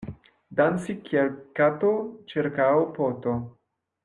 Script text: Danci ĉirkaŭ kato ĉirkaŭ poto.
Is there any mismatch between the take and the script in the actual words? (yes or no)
yes